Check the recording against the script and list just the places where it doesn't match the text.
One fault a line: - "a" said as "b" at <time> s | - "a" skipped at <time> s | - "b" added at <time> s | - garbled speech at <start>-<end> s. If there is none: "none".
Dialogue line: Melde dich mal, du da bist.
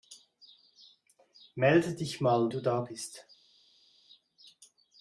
none